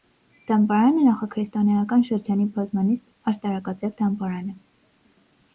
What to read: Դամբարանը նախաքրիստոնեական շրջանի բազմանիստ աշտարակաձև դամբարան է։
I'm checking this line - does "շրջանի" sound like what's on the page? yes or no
yes